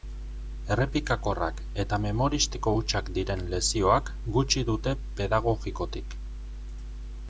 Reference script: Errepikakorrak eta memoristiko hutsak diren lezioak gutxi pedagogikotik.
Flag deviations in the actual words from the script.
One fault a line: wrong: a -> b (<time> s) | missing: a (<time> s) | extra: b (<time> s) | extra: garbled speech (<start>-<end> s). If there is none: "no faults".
extra: dute (4.7 s)